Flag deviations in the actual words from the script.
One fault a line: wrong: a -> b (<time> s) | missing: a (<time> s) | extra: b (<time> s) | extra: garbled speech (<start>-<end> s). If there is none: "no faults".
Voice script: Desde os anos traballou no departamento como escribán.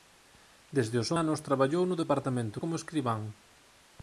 no faults